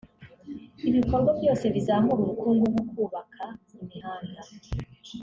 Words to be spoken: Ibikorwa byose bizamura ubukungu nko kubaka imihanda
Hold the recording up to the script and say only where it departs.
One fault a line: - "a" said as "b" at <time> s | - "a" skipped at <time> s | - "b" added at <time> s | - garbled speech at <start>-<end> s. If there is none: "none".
none